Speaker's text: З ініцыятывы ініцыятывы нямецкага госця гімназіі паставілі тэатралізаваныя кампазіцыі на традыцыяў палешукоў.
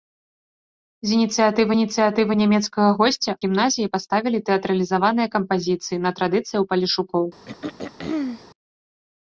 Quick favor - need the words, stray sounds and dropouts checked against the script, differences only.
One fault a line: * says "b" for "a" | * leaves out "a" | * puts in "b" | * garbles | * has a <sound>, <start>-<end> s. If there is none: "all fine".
* has a throat clearing, 7.5-8.5 s